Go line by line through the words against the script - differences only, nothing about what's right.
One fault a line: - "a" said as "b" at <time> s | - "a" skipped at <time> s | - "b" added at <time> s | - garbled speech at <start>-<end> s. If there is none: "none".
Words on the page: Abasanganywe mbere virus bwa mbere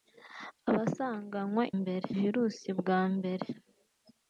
none